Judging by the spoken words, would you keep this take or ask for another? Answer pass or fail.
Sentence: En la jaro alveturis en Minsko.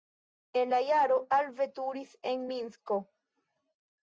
pass